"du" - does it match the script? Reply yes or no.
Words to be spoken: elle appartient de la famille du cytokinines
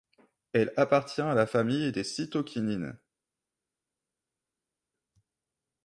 no